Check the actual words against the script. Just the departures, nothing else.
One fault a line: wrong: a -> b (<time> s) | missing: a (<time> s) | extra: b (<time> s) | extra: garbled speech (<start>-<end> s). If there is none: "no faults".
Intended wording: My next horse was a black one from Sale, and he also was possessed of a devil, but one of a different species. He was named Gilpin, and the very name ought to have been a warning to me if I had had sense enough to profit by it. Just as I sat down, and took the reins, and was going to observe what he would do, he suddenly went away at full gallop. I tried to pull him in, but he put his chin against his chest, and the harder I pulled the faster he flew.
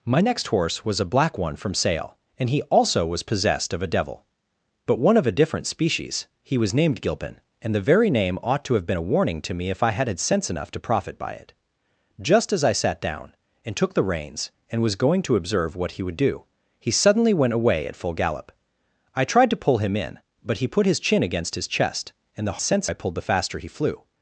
wrong: harder -> sense (22.6 s)